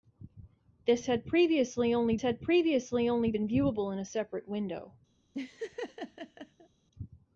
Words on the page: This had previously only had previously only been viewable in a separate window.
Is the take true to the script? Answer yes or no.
yes